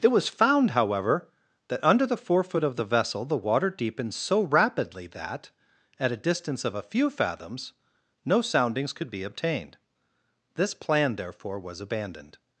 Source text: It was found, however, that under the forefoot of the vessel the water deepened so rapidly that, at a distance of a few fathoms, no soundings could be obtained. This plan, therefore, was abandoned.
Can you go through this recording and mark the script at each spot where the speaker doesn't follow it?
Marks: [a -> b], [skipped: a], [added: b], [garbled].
It was found, however, that under the forefoot of the vessel the water deepened so rapidly that, at a distance of a few fathoms, no soundings could be obtained. This plan, therefore, was abandoned.